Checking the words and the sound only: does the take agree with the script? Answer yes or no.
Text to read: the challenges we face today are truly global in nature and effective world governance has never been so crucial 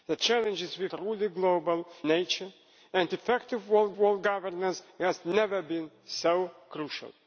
no